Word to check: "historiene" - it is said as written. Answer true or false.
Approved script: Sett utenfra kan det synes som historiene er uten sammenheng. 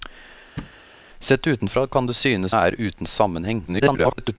false